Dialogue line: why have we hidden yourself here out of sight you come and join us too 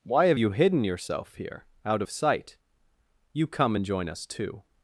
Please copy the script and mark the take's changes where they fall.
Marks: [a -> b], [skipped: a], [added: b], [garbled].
why have [we -> you] hidden yourself here out of sight you come and join us too